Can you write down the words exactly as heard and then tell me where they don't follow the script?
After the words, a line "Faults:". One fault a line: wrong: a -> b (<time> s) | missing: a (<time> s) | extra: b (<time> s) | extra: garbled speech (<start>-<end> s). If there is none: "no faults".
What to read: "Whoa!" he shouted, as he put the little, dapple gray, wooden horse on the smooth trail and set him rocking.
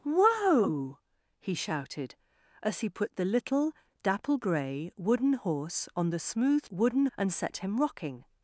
"Whoa!" he shouted, as he put the little, dapple gray, wooden horse on the smooth wooden and set him rocking.
Faults:
wrong: trail -> wooden (6.7 s)